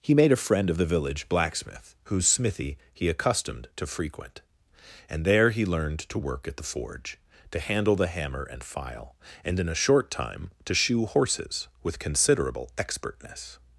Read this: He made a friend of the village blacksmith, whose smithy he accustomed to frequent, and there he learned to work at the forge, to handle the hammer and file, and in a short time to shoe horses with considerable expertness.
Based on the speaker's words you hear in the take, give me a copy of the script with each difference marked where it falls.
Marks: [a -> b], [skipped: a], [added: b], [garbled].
He made a friend of the village blacksmith, whose smithy he accustomed to frequent, and there he learned to work at the forge, to handle the hammer and file, and in a short time to shoe horses with considerable expertness.